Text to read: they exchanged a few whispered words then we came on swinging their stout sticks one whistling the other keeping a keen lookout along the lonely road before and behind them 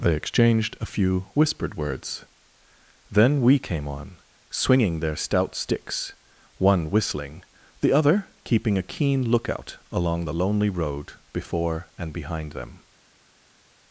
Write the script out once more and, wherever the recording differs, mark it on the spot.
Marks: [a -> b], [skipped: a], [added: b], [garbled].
they exchanged a few whispered words then we came on swinging their stout sticks one whistling the other keeping a keen lookout along the lonely road before and behind them